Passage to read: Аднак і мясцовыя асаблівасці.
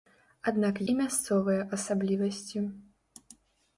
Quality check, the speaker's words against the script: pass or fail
pass